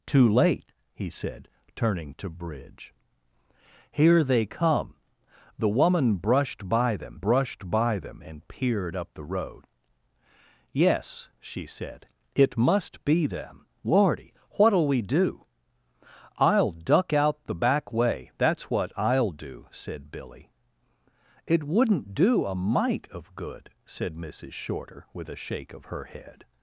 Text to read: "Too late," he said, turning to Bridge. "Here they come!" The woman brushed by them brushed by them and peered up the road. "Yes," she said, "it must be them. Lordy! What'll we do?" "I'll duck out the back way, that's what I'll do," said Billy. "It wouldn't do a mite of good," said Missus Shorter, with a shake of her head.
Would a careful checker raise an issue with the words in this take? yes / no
no